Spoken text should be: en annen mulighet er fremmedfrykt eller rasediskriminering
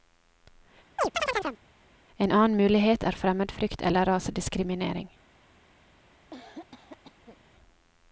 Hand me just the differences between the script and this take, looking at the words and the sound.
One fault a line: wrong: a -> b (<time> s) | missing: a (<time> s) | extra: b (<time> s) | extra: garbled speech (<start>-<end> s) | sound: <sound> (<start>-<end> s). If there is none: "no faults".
sound: chirp (1.0-1.6 s)
sound: cough (6.3-7.4 s)